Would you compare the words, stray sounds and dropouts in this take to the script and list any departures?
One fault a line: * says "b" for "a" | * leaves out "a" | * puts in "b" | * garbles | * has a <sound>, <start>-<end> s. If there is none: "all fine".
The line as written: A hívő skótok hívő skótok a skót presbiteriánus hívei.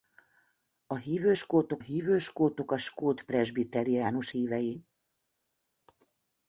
all fine